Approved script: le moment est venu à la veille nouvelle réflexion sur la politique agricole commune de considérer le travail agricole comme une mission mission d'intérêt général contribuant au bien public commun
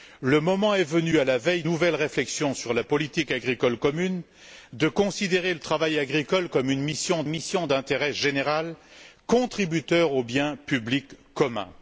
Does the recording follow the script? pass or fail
pass